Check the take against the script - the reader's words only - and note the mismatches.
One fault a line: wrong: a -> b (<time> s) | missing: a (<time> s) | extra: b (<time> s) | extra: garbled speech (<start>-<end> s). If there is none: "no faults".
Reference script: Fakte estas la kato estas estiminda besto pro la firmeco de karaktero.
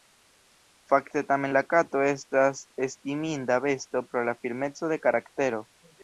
wrong: estas -> tamen (1.3 s)